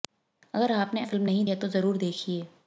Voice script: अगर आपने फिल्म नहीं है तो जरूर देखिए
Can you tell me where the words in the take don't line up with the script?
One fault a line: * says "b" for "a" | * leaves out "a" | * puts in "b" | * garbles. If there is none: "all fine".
all fine